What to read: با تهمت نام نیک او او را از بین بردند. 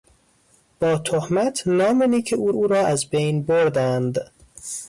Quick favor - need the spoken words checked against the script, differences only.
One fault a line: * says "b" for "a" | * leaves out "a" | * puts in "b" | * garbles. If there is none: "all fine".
all fine